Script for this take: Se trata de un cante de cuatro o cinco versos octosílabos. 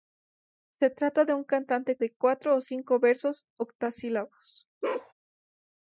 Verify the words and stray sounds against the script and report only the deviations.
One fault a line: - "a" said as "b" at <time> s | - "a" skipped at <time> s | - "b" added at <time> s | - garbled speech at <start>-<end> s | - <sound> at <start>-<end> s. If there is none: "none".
- bark at 4.8-5.1 s